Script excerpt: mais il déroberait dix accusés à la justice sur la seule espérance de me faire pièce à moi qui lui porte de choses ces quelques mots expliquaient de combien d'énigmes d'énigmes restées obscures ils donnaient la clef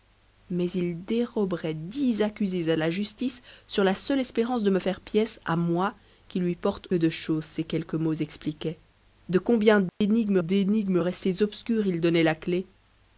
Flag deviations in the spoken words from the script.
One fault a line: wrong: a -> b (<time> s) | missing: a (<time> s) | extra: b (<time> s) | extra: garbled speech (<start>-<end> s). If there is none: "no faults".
no faults